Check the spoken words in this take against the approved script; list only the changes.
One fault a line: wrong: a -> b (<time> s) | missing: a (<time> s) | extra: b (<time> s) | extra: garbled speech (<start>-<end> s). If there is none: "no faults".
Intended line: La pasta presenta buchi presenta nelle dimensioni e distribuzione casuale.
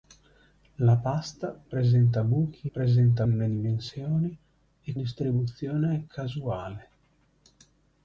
no faults